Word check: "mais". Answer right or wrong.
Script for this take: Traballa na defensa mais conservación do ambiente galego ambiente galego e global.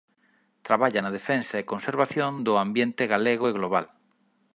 wrong